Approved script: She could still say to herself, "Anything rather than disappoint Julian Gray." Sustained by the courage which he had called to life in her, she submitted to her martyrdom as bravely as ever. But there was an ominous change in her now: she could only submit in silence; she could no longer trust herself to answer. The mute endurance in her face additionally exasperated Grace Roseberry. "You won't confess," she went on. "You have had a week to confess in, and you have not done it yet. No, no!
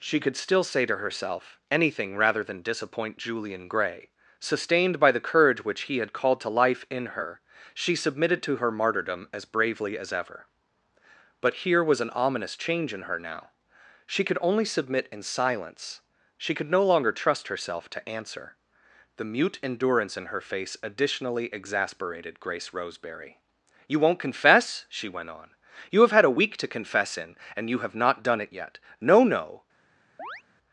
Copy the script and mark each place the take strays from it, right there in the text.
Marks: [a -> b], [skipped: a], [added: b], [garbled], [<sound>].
She could still say to herself, "Anything rather than disappoint Julian Gray." Sustained by the courage which he had called to life in her, she submitted to her martyrdom as bravely as ever. But [there -> here] was an ominous change in her now: she could only submit in silence; she could no longer trust herself to answer. The mute endurance in her face additionally exasperated Grace Roseberry. "You won't confess," she went on. "You have had a week to confess in, and you have not done it yet. No, no! [chirp]